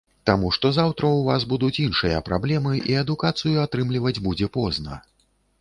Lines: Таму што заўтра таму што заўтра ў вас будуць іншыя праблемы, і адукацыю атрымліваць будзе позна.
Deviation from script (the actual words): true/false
true